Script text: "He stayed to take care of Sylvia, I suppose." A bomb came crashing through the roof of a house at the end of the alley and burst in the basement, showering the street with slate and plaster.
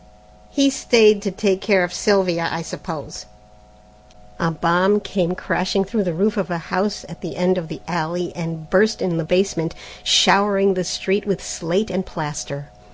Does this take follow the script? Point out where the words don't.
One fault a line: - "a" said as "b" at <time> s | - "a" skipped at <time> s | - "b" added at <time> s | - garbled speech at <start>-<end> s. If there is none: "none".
none